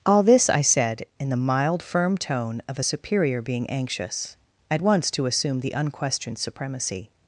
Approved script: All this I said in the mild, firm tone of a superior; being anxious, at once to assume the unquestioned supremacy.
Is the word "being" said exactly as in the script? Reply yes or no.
yes